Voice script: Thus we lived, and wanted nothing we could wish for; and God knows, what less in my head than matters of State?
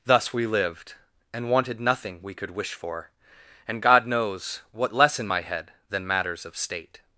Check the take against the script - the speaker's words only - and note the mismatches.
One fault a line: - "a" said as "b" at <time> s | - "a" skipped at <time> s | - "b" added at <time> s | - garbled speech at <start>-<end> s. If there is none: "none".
none